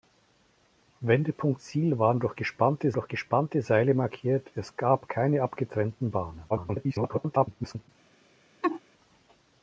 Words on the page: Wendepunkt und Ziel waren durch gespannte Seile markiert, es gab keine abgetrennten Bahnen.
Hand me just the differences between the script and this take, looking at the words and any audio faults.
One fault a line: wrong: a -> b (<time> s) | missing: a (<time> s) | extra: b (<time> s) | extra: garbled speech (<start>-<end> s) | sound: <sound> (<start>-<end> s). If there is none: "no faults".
missing: und (1.6 s)
extra: durch gespannte (2.9 s)
extra: garbled speech (6.5-7.9 s)
sound: laugh (8.6-8.8 s)